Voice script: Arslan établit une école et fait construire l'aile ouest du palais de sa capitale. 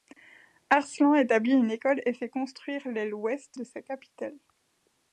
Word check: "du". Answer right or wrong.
wrong